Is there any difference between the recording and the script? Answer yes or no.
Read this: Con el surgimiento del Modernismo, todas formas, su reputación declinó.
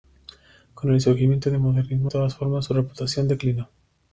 no